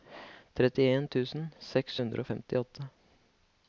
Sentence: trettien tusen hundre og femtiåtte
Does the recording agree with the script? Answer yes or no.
no